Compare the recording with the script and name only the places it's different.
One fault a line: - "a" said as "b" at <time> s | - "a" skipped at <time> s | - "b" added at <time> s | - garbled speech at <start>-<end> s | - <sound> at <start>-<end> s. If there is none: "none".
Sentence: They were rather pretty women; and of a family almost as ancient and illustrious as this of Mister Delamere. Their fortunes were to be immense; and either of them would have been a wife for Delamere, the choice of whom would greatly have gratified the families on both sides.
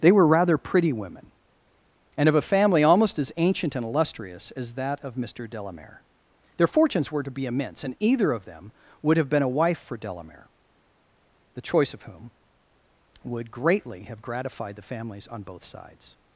- "this" said as "that" at 4.8 s